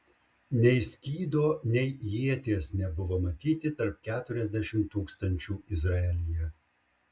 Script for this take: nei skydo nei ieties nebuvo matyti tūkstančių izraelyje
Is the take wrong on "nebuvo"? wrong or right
right